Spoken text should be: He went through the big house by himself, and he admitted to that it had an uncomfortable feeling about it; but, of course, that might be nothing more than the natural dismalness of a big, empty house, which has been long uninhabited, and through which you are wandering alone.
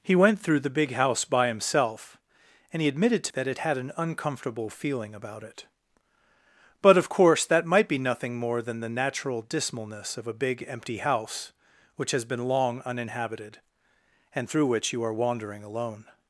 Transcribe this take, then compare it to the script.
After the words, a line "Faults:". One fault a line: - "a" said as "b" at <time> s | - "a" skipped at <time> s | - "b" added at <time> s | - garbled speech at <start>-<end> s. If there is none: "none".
He went through the big house by himself, and he admitted to that it had an uncomfortable feeling about it; but, of course, that might be nothing more than the natural dismalness of a big, empty house, which has been long uninhabited, and through which you are wandering alone.
Faults:
none